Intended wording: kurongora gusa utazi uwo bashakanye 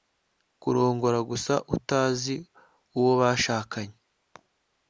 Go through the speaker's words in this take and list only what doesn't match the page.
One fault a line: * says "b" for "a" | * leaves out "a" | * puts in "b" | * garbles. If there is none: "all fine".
all fine